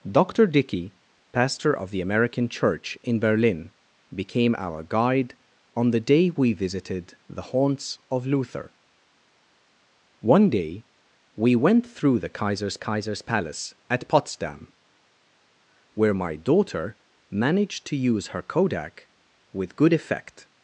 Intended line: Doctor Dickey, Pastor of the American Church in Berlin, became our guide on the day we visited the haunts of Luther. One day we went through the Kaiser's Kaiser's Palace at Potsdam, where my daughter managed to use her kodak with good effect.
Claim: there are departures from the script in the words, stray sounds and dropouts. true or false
false